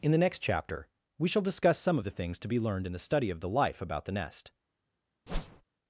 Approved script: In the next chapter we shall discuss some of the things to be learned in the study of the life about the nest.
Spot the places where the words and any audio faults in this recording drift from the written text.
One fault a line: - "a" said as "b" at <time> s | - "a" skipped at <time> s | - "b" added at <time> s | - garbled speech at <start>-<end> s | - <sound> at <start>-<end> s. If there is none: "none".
- whoosh at 5.3-5.6 s